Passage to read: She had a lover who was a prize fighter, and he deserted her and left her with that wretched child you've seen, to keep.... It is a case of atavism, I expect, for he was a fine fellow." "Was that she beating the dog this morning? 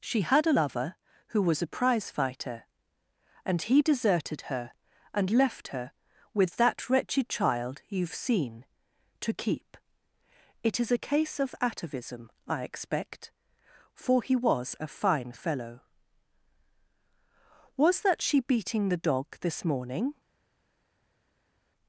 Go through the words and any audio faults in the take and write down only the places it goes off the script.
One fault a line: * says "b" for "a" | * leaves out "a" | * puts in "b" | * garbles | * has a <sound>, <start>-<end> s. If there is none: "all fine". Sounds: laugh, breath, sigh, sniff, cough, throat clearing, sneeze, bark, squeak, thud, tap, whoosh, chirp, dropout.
all fine